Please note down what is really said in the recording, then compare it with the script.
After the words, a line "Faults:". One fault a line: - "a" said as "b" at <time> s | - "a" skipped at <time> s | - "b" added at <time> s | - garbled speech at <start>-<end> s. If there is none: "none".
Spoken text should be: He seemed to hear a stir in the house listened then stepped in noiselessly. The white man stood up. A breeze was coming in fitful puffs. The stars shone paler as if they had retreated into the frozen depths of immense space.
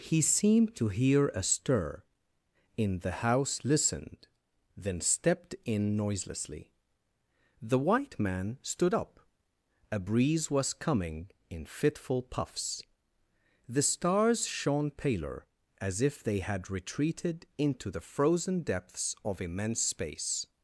He seemed to hear a stir in the house listened then stepped in noiselessly. The white man stood up. A breeze was coming in fitful puffs. The stars shone paler as if they had retreated into the frozen depths of immense space.
Faults:
none